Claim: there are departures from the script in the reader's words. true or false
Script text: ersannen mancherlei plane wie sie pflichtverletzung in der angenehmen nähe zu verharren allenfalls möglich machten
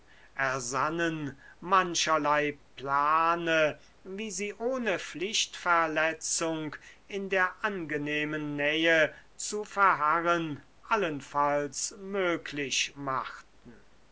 true